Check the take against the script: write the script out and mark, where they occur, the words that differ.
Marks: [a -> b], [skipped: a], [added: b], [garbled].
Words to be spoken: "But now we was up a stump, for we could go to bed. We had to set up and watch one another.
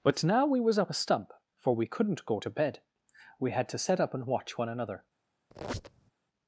"But now we was up a stump, for we [could -> couldn't] go to bed. We had to set up and watch one another.